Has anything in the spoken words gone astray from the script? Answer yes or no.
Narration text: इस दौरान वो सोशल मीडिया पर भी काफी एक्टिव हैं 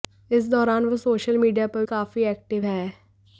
yes